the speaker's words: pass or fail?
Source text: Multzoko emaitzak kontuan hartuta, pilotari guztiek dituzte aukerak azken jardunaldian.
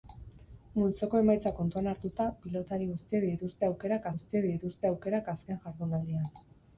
fail